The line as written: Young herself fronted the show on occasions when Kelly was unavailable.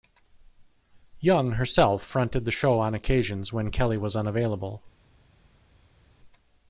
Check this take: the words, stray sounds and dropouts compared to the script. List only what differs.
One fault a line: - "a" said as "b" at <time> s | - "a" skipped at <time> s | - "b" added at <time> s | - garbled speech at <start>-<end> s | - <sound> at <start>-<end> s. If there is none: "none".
none